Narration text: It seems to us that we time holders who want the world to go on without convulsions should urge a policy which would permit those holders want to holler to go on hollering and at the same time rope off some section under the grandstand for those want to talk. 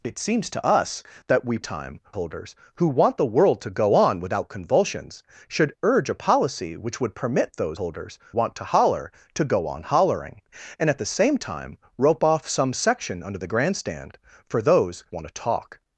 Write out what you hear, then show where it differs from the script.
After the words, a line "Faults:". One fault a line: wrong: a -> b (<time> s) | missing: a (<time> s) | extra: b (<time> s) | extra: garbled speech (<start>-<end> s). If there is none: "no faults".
It seems to us that we time holders who want the world to go on without convulsions should urge a policy which would permit those holders want to holler to go on hollering and at the same time rope off some section under the grandstand for those want to talk.
Faults:
no faults